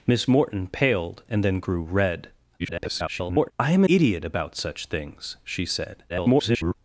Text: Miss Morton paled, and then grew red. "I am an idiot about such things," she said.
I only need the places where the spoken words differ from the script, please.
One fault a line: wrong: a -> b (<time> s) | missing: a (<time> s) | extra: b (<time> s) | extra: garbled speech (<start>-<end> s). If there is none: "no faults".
extra: garbled speech (2.6-3.5 s)
missing: an (3.8 s)
extra: garbled speech (6.1-6.7 s)